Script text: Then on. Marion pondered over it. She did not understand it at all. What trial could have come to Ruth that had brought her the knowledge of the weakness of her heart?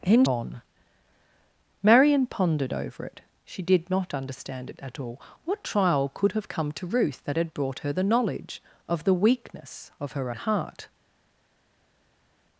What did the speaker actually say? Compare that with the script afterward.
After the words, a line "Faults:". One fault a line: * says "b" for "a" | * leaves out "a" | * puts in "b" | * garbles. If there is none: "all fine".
Then on. Marion pondered over it. She did not understand it at all. What trial could have come to Ruth that had brought her the knowledge of the weakness of her heart?
Faults:
all fine